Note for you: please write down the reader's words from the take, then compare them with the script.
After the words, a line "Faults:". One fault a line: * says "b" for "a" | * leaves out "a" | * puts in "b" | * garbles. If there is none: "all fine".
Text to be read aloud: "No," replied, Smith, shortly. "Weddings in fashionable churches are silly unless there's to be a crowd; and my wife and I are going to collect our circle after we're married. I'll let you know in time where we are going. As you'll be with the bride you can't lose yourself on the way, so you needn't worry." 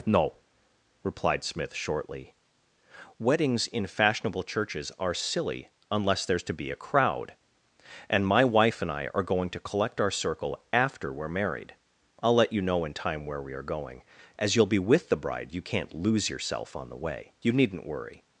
"No," replied, Smith, shortly. "Weddings in fashionable churches are silly unless there's to be a crowd; and my wife and I are going to collect our circle after we're married. I'll let you know in time where we are going. As you'll be with the bride you can't lose yourself on the way, you needn't worry."
Faults:
* leaves out "so"